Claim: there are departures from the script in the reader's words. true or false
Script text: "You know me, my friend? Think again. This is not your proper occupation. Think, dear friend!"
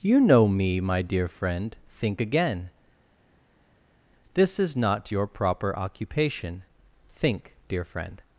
true